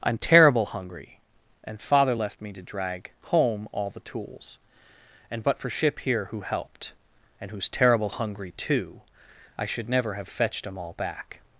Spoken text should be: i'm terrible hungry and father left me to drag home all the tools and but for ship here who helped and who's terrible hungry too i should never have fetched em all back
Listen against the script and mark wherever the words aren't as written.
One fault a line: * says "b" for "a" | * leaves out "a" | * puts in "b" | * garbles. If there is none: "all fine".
all fine